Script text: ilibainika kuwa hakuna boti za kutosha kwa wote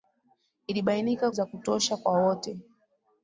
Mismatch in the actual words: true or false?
true